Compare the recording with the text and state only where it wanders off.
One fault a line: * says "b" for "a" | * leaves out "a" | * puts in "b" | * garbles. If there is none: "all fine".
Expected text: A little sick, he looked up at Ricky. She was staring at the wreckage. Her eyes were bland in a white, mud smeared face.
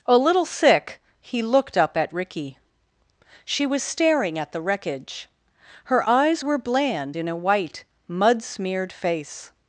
all fine